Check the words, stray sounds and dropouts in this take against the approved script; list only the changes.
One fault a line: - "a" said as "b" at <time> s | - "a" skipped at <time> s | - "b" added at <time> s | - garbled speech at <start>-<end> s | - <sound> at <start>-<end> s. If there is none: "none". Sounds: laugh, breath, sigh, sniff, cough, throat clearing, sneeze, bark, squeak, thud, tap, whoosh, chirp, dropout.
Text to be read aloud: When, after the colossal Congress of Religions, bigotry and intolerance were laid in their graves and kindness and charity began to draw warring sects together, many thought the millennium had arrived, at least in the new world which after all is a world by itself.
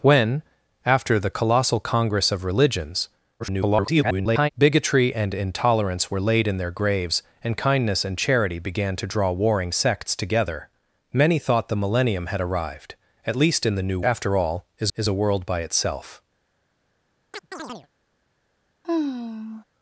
- garbled speech at 3.4-4.5 s
- "world which" skipped at 14.0 s
- "is" added at 14.9 s
- chirp at 17.3-17.9 s
- sigh at 18.8-19.6 s